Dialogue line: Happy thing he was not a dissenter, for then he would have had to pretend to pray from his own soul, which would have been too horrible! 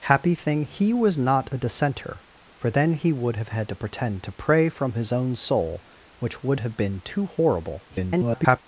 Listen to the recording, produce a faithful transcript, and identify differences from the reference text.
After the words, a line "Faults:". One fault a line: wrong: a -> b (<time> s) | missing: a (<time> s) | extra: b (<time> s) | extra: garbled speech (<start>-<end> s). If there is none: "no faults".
Happy thing he was not a dissenter, for then he would have had to pretend to pray from his own soul, which would have been too horrible! [garbled]
Faults:
extra: garbled speech (7.9-8.6 s)